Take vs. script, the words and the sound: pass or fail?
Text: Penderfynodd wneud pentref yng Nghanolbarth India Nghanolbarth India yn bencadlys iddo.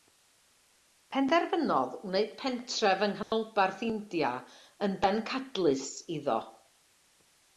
fail